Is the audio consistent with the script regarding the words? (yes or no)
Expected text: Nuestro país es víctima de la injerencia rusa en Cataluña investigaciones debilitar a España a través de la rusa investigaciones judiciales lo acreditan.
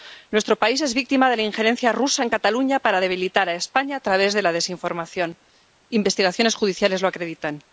no